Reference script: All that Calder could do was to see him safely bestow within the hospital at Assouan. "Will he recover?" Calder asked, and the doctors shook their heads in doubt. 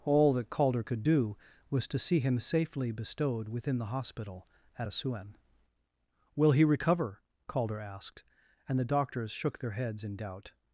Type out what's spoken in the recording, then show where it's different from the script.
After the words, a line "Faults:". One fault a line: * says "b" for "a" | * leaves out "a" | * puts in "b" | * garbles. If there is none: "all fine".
All that Calder could do was to see him safely bestowed within the hospital at Assouan. "Will he recover?" Calder asked, and the doctors shook their heads in doubt.
Faults:
* says "bestowed" for "bestow"